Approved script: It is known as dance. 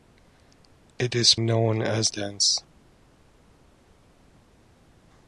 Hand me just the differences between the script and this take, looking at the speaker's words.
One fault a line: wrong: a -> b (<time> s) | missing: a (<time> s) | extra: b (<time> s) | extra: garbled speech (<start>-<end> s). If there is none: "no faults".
no faults